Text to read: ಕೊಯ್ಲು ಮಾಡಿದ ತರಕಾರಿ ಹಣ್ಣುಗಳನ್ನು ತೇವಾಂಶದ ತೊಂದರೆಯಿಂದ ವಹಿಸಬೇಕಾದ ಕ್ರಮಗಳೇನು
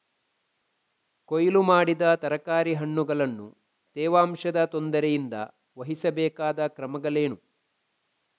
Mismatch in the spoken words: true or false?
false